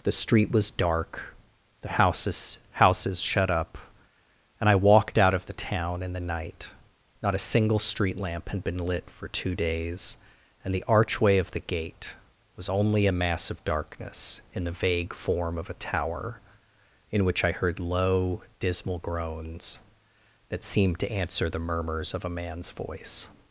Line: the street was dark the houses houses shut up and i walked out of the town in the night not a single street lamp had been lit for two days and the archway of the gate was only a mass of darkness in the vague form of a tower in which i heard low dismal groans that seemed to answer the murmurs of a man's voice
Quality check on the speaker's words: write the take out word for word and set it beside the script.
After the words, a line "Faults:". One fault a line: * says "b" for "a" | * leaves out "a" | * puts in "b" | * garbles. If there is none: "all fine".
the street was dark the houses houses shut up and i walked out of the town in the night not a single street lamp had been lit for two days and the archway of the gate was only a mass of darkness in the vague form of a tower in which i heard low dismal groans that seemed to answer the murmurs of a man's voice
Faults:
all fine